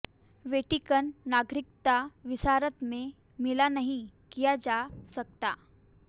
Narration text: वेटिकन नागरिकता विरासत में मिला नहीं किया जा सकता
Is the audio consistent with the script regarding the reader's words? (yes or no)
yes